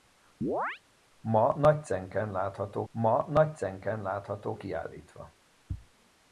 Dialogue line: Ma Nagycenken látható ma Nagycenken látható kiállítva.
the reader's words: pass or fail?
pass